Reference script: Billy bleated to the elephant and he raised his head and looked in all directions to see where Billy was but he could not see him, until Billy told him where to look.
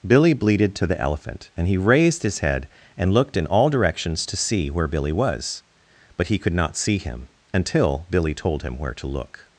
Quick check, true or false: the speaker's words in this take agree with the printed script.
true